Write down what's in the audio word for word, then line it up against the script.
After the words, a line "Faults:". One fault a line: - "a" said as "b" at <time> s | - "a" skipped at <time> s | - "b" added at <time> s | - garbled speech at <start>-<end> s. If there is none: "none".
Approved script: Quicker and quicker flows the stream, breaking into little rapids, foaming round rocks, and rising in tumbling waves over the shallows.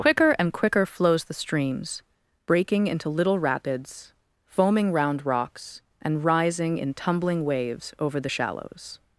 Quicker and quicker flows the streams, breaking into little rapids, foaming round rocks, and rising in tumbling waves over the shallows.
Faults:
- "stream" said as "streams" at 1.4 s